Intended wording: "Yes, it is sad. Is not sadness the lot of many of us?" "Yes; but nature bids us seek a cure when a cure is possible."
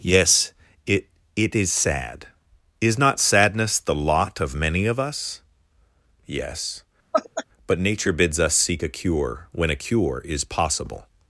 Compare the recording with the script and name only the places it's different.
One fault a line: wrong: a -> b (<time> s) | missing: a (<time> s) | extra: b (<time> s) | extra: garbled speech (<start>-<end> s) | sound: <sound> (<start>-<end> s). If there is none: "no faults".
extra: it (1.4 s)
sound: laugh (7.1-7.4 s)